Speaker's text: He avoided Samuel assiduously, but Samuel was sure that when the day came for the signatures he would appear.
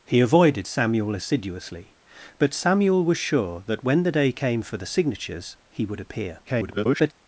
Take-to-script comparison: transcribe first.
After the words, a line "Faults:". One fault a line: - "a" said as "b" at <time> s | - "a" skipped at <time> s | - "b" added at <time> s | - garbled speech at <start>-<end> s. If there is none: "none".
He avoided Samuel assiduously, but Samuel was sure that when the day came for the signatures he would appear. [garbled]
Faults:
- garbled speech at 6.5-7.1 s